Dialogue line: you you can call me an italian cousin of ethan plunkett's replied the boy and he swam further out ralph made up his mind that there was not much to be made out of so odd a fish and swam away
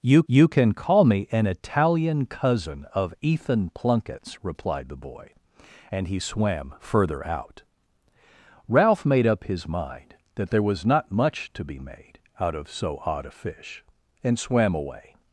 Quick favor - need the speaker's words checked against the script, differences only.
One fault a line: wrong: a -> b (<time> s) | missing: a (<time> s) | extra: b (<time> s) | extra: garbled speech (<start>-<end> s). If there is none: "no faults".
no faults